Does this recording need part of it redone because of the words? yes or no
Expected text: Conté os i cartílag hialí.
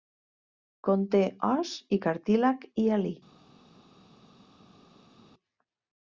no